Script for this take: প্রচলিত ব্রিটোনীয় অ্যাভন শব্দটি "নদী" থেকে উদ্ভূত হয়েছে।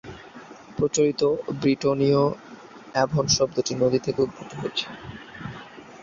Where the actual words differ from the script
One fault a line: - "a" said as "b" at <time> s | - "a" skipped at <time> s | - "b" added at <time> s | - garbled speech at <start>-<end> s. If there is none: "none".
none